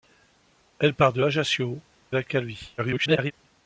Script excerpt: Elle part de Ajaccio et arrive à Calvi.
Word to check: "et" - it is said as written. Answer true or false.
false